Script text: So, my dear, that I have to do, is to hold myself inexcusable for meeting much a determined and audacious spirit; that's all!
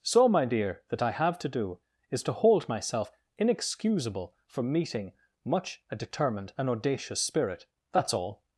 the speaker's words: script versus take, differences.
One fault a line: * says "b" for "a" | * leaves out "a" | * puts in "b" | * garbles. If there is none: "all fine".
all fine